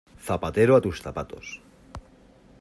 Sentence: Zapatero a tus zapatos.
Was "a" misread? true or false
false